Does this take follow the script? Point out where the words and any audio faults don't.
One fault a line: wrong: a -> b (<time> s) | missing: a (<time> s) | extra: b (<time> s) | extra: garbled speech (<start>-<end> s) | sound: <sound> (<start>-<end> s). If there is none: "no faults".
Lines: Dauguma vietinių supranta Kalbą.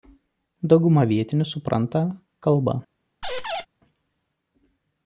sound: squeak (3.2-3.7 s)